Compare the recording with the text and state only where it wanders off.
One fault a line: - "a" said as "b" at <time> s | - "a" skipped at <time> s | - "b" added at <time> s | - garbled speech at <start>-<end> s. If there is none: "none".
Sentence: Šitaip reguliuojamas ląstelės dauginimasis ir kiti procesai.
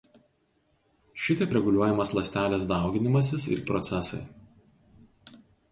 - "kiti" skipped at 3.6 s